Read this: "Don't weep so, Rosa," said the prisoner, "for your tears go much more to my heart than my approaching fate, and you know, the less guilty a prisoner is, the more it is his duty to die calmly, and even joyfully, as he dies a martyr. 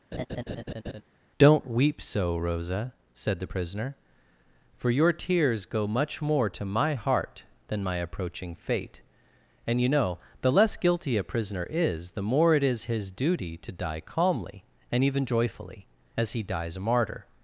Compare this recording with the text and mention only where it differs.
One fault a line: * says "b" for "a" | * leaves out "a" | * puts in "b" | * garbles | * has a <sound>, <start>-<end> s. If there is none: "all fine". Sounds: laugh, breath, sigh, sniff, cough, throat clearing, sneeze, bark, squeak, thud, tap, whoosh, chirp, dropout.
* has a laugh, 0.1-1.0 s